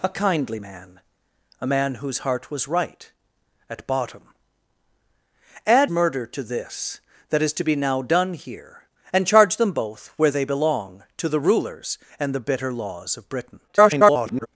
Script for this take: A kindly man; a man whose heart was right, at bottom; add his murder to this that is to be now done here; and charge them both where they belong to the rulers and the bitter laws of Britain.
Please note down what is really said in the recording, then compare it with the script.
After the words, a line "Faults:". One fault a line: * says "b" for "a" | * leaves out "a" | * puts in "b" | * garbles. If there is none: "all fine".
A kindly man; a man whose heart was right, at bottom; add murder to this that is to be now done here; and charge them both where they belong to the rulers and the bitter laws of Britain. [garbled]
Faults:
* leaves out "his"
* garbles